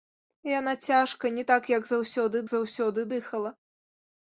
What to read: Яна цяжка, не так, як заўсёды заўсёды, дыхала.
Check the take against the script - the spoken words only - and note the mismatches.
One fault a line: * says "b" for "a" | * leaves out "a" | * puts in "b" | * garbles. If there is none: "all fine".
all fine